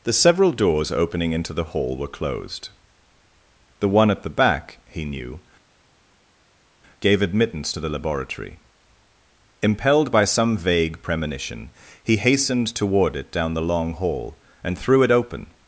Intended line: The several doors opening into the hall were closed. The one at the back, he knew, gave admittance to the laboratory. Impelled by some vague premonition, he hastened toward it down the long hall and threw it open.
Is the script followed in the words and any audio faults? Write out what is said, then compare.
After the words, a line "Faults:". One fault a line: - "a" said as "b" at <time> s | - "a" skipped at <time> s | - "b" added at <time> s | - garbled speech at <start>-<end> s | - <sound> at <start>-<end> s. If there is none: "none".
The several doors opening into the hall were closed. The one at the back, he knew, gave admittance to the laboratory. Impelled by some vague premonition, he hastened toward it down the long hall and threw it open.
Faults:
none